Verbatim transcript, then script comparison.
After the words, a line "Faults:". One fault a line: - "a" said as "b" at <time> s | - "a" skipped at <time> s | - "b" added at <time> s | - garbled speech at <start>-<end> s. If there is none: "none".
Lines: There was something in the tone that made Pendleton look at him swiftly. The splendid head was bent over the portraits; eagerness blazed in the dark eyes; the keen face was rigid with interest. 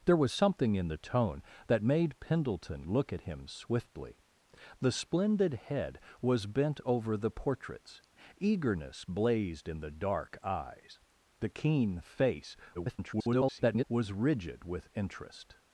There was something in the tone that made Pendleton look at him swiftly. The splendid head was bent over the portraits; eagerness blazed in the dark eyes; the keen face [garbled] was rigid with interest.
Faults:
- garbled speech at 12.7-13.8 s